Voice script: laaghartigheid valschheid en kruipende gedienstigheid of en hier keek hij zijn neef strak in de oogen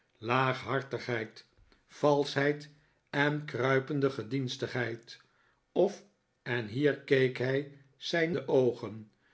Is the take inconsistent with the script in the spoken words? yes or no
yes